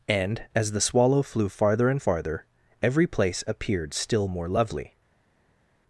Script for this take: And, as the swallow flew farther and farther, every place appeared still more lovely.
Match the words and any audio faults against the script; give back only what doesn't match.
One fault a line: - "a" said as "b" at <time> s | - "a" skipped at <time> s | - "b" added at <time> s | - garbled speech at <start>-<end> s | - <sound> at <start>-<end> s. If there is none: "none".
none